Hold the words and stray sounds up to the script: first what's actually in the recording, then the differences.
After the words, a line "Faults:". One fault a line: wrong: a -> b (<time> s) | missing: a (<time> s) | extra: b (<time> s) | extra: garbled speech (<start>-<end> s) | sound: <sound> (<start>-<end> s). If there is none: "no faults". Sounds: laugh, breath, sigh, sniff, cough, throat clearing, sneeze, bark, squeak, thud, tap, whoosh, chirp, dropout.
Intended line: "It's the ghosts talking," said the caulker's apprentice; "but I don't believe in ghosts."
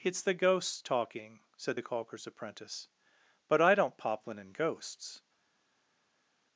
"It's the ghosts talking," said the caulker's apprentice; "but I don't poplin in ghosts."
Faults:
wrong: believe -> poplin (4.0 s)